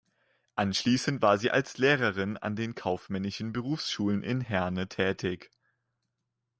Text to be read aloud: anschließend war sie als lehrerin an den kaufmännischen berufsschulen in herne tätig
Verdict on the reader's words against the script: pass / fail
pass